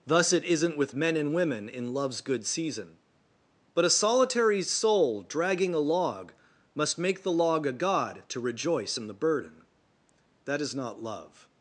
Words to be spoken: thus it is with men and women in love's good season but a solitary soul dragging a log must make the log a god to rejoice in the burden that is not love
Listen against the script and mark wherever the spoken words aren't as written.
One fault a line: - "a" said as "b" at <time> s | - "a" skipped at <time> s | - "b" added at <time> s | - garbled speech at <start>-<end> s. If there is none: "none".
- "is" said as "isn't" at 0.4 s